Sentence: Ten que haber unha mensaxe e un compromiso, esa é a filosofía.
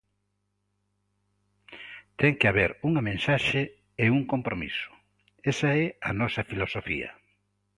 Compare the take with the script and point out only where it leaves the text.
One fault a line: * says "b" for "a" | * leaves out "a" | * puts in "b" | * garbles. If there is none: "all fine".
* puts in "nosa"